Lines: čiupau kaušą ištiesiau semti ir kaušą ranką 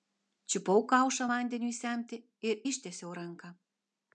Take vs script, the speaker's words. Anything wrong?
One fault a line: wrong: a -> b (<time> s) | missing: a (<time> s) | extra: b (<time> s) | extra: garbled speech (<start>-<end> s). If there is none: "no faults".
wrong: ištiesiau -> vandeniui (1.3 s)
wrong: kaušą -> ištiesiau (2.7 s)